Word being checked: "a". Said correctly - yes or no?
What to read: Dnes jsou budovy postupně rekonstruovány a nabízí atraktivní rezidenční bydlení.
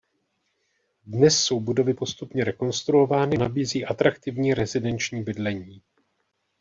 no